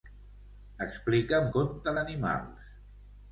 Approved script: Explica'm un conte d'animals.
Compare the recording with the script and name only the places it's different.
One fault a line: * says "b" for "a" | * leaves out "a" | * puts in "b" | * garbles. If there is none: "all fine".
* leaves out "un"